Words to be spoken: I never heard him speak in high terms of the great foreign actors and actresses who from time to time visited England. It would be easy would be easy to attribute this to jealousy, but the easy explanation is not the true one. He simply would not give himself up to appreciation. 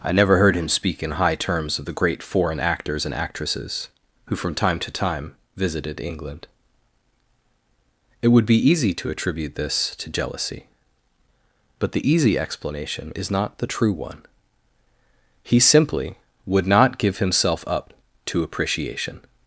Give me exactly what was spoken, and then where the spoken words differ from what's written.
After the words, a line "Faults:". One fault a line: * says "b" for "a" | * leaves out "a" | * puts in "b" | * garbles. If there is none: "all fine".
I never heard him speak in high terms of the great foreign actors and actresses who from time to time visited England. It would be easy to attribute this to jealousy, but the easy explanation is not the true one. He simply would not give himself up to appreciation.
Faults:
* leaves out "would be easy"